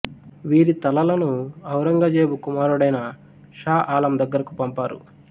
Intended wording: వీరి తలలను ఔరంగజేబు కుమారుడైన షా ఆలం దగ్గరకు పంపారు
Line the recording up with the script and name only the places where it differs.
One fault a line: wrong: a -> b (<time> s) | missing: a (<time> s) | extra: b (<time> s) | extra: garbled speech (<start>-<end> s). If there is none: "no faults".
no faults